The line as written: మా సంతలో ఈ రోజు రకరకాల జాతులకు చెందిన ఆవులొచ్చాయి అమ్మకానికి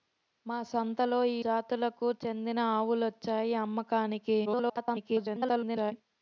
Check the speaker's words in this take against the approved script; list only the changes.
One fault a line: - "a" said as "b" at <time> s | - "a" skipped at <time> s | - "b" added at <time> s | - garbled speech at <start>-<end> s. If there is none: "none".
- "రోజు రకరకాల" skipped at 1.4 s
- garbled speech at 4.5-5.9 s